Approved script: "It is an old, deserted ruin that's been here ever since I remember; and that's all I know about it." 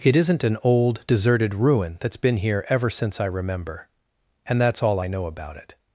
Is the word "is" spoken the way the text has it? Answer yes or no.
no